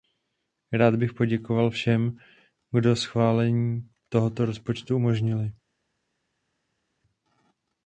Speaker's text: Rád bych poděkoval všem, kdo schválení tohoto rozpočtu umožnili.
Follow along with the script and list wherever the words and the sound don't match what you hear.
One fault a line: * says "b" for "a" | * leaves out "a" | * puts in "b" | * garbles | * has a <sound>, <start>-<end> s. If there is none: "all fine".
all fine